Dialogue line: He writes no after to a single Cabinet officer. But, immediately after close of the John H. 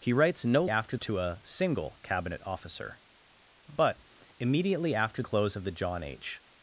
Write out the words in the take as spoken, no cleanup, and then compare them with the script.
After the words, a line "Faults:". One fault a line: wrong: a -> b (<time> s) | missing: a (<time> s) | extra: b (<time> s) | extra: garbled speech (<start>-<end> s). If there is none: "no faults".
He writes no after to a single Cabinet officer. But, immediately after close of the John H.
Faults:
no faults